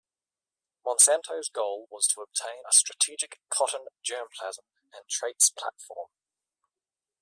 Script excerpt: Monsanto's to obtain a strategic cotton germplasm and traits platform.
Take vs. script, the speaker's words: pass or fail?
fail